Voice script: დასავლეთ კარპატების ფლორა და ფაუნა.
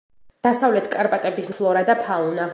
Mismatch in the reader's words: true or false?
false